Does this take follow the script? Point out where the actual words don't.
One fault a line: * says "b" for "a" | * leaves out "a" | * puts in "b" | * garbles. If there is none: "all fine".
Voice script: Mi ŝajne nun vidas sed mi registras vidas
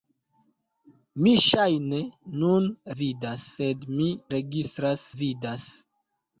all fine